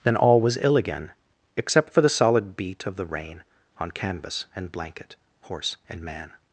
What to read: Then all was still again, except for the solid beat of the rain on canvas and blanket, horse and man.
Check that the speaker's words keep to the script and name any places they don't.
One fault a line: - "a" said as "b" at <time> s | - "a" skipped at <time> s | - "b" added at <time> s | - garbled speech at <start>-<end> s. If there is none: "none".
- "still" said as "ill" at 0.6 s